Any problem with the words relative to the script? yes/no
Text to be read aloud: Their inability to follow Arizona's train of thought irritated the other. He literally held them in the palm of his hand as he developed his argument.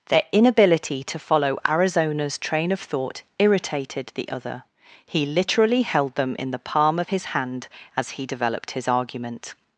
no